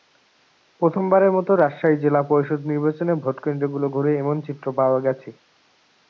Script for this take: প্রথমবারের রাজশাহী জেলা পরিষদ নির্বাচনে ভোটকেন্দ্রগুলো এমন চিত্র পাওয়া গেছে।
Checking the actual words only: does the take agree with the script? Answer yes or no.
no